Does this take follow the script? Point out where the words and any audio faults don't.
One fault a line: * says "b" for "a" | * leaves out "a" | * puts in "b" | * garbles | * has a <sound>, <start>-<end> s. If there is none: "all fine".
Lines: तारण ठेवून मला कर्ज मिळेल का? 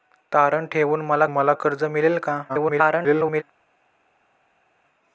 * puts in "मला"
* garbles